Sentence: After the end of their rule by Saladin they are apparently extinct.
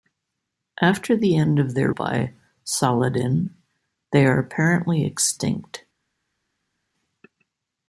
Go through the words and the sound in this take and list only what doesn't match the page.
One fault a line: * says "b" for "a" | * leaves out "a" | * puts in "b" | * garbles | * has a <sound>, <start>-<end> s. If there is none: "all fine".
* leaves out "rule"